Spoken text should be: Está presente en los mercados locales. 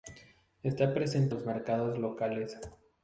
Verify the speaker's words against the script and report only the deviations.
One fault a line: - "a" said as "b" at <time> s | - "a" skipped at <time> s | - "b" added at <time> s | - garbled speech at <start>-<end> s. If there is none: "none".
- "en" skipped at 1.4 s